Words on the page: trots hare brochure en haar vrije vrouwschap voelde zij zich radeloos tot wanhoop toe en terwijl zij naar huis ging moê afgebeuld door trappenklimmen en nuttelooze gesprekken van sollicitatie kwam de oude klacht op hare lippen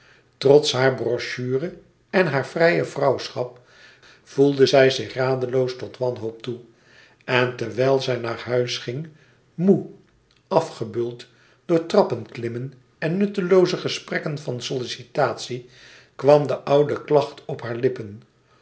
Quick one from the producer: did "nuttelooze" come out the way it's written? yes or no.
yes